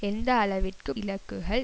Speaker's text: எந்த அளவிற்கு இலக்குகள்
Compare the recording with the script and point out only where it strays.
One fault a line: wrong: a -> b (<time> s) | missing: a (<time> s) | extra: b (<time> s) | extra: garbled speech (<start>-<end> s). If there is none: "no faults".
no faults